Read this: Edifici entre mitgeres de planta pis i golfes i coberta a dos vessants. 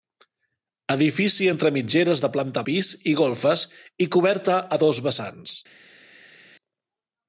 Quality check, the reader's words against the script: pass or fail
pass